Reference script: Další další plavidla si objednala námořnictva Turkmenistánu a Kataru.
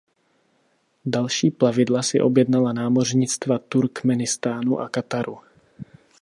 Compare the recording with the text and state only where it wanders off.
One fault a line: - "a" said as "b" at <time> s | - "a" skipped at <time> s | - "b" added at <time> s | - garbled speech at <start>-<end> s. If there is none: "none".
- "další" skipped at 1.5 s